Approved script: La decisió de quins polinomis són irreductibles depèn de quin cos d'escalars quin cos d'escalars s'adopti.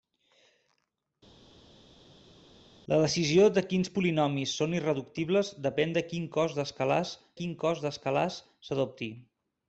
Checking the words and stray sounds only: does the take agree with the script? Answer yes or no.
yes